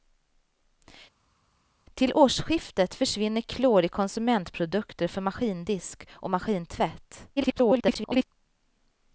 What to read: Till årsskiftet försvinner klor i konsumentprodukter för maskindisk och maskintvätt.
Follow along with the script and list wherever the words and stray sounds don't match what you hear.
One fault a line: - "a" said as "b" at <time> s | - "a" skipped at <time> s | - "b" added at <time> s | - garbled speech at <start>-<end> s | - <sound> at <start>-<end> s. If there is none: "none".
- garbled speech at 7.4-8.2 s